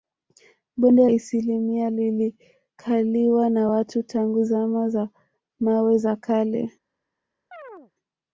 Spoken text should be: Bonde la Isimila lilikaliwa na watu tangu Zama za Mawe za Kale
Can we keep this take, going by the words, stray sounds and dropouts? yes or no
no